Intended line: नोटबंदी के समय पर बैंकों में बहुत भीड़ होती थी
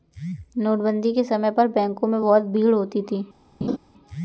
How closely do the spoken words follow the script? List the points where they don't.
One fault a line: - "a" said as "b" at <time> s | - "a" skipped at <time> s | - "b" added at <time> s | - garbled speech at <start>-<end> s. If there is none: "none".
none